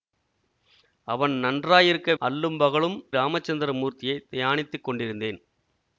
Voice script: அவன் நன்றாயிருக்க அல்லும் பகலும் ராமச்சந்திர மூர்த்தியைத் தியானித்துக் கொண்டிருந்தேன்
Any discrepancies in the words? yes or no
no